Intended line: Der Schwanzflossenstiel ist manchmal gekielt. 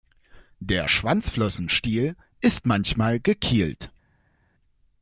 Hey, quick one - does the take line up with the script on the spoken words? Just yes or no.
yes